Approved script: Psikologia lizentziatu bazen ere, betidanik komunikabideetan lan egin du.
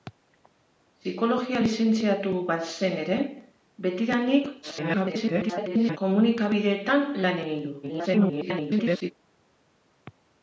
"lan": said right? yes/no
yes